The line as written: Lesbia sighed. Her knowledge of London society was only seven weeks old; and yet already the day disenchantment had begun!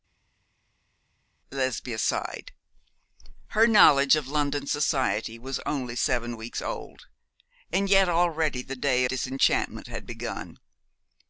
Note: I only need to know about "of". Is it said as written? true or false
true